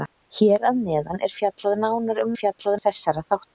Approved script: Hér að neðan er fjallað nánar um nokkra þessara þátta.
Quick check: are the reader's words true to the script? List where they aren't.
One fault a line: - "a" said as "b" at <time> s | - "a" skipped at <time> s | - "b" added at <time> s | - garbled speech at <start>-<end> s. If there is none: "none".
- "nokkra" said as "fjallað" at 2.4 s